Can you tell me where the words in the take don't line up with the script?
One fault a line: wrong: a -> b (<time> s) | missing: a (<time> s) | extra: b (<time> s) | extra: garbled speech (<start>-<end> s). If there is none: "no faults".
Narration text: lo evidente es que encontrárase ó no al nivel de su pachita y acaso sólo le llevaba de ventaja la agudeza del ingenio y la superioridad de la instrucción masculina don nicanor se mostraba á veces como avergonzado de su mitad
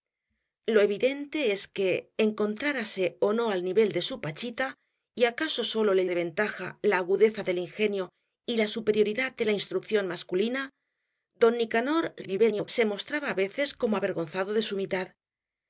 missing: llevaba (6.1 s)
extra: garbled speech (12.2-12.7 s)